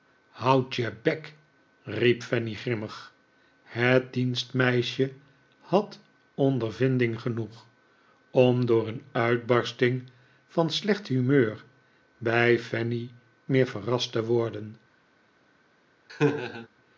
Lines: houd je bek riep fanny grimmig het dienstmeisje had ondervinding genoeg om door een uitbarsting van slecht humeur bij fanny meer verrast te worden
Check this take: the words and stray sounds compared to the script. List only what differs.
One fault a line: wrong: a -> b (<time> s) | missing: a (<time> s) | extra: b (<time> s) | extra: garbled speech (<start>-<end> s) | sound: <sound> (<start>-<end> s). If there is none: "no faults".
sound: laugh (16.1-16.7 s)